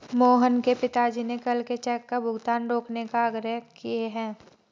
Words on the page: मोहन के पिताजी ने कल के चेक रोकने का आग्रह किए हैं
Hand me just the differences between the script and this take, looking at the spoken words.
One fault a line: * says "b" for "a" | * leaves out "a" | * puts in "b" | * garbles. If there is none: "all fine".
* puts in "का भुगतान"